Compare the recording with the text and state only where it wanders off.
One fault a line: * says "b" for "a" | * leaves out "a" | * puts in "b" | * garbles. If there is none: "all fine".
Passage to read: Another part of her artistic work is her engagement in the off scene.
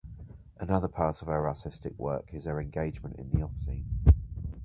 all fine